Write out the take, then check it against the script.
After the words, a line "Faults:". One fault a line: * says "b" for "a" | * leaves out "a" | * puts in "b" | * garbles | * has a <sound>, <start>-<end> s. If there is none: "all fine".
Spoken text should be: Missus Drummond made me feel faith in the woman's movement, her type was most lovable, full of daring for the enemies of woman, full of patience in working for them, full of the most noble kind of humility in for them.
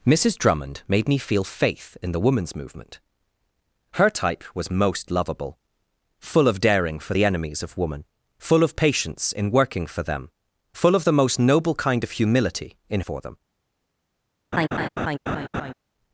Missus Drummond made me feel faith in the woman's movement, her type was most lovable, full of daring for the enemies of woman, full of patience in working for them, full of the most noble kind of humility in for them.
Faults:
* has a laugh, 14.5-15.7 s